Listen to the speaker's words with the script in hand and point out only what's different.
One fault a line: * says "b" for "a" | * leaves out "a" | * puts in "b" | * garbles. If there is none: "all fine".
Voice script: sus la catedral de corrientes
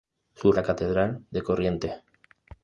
all fine